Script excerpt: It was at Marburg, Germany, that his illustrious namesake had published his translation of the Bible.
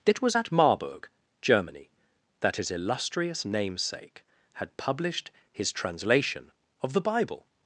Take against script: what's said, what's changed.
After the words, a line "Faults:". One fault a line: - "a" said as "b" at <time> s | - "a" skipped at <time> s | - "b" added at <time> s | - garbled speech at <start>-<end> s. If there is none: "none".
It was at Marburg, Germany, that his illustrious namesake had published his translation of the Bible.
Faults:
none